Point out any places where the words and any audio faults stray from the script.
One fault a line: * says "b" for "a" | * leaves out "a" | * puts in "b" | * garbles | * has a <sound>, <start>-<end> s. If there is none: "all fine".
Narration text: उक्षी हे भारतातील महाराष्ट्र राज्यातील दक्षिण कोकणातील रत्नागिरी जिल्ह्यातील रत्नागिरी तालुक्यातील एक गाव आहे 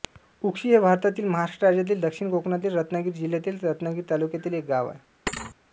* has a thud, 5.3-5.6 s